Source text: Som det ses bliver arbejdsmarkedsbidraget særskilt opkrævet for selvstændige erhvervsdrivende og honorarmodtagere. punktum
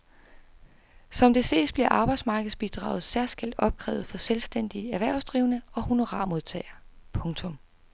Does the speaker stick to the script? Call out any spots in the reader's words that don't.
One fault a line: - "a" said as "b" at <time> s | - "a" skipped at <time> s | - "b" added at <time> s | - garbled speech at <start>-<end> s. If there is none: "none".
none